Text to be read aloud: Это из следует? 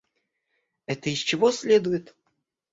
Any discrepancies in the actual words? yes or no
yes